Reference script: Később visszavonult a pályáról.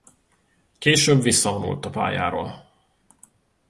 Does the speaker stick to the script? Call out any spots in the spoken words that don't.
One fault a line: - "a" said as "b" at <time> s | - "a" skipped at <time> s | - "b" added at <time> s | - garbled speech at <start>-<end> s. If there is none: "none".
none